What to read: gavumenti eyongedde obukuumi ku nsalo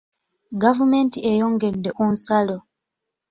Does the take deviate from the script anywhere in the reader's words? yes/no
yes